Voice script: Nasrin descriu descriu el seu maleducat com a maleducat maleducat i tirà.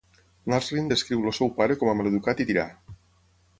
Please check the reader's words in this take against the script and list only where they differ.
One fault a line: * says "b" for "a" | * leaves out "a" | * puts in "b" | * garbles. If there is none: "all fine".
* leaves out "descriu"
* says "pare" for "maleducat"
* leaves out "maleducat"